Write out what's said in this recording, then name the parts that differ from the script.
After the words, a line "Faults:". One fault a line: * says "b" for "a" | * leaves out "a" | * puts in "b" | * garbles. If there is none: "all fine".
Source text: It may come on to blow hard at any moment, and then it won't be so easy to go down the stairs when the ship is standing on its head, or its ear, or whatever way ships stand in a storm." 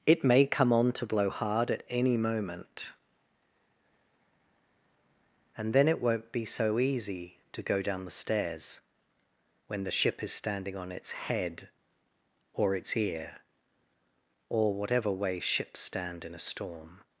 It may come on to blow hard at any moment, and then it won't be so easy to go down the stairs when the ship is standing on its head, or its ear, or whatever way ships stand in a storm."
Faults:
all fine